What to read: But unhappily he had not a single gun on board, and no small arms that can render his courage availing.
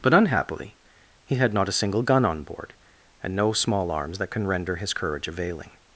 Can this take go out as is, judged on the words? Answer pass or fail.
pass